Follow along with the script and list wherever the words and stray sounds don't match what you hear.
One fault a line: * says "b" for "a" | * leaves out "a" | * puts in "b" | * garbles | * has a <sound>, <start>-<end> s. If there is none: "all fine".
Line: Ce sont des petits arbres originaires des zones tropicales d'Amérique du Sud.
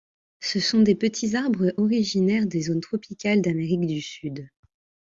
all fine